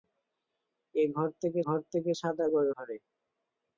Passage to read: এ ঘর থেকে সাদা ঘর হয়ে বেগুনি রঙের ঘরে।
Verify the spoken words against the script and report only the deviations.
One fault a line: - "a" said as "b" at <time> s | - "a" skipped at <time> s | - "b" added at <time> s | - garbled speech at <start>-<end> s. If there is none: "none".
- "সাদা" skipped at 1.6 s
- "হয়ে বেগুনি রঙের" said as "থেকে সাদা ঘর" at 1.9 s